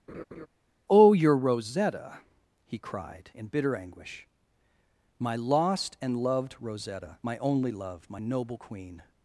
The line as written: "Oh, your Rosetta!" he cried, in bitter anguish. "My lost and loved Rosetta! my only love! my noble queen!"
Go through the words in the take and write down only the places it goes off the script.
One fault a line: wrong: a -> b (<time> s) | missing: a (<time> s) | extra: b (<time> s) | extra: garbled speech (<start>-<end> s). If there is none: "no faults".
no faults